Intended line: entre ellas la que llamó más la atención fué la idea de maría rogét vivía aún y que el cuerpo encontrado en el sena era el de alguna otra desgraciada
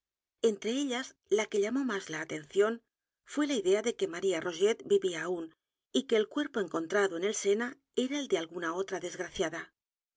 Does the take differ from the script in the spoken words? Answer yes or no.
yes